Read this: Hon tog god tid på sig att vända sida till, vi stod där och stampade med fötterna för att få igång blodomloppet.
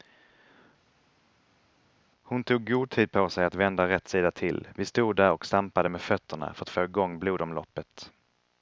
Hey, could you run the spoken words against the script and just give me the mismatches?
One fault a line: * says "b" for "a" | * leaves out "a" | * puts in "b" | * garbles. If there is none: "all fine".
* puts in "rätt"